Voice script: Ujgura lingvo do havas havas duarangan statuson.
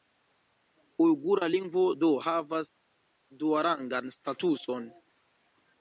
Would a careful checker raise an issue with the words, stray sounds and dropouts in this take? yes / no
yes